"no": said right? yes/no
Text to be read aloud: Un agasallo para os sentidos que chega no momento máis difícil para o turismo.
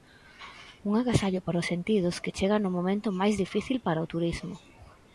yes